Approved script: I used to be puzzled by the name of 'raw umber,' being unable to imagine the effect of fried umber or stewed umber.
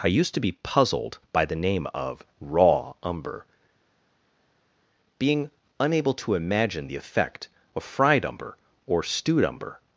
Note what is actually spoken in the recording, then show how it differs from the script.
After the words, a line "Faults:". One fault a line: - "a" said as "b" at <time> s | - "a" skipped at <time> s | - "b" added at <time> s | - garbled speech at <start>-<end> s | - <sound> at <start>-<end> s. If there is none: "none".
I used to be puzzled by the name of 'raw umber,' being unable to imagine the effect of fried umber or stewed umber.
Faults:
none